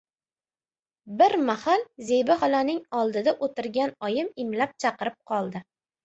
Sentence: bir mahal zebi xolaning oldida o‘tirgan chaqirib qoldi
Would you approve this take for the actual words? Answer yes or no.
no